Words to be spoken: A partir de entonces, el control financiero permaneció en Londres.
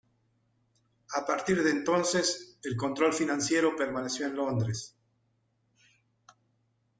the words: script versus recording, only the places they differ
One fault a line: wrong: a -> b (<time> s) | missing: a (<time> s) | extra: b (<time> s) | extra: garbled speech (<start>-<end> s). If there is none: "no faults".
no faults